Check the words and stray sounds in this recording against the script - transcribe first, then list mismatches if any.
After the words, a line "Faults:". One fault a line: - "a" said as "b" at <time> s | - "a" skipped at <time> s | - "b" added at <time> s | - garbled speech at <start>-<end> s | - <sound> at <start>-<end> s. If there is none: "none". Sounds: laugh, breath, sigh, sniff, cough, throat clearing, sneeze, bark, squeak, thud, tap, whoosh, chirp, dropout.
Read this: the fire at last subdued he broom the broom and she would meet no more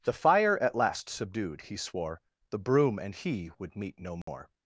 the fire at last subdued he swore the broom and he would meet no more
Faults:
- "broom" said as "swore" at 1.8 s
- "she" said as "he" at 3.1 s
- dropout at 4.2-4.3 s